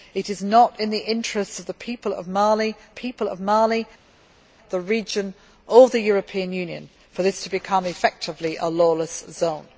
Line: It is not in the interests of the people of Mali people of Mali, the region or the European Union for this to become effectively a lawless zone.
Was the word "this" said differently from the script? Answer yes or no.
no